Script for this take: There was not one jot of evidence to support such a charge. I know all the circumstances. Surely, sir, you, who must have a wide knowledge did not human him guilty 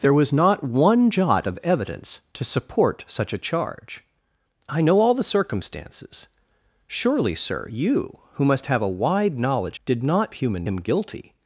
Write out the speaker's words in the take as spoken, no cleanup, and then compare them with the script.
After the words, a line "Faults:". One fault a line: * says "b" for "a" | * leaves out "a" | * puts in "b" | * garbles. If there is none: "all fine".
There was not one jot of evidence to support such a charge. I know all the circumstances. Surely, sir, you, who must have a wide knowledge did not human him guilty
Faults:
all fine